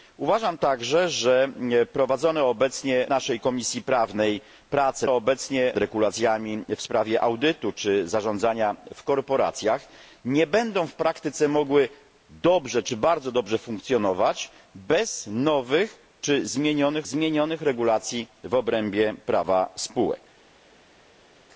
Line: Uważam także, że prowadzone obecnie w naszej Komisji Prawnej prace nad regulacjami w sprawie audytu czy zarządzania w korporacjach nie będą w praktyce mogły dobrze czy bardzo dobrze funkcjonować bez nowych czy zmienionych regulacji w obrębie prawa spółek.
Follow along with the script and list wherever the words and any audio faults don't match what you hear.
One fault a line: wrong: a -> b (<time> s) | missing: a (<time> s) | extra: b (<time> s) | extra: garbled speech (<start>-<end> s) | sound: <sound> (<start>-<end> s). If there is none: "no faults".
missing: w (3.1 s)
wrong: nad -> obecnie (5.1 s)
extra: zmienionych (17.0 s)